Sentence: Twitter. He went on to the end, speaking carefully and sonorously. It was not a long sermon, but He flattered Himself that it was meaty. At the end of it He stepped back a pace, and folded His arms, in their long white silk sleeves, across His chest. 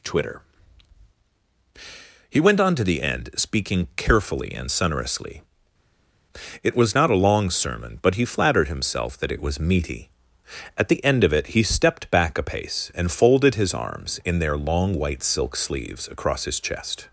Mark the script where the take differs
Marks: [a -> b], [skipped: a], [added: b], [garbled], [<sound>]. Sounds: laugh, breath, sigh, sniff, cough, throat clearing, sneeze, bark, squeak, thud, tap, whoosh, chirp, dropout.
Twitter. He went on to the end, speaking carefully and sonorously. It was not a long sermon, but He flattered Himself that it was meaty. At the end of it He stepped back a pace, and folded His arms, in their long white silk sleeves, across His chest.